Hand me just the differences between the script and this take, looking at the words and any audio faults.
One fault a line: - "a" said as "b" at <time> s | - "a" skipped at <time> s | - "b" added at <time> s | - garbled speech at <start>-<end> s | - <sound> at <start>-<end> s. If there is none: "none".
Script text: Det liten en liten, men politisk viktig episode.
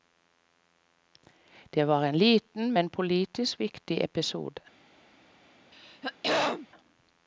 - "liten" said as "var" at 1.9 s
- throat clearing at 5.7-6.7 s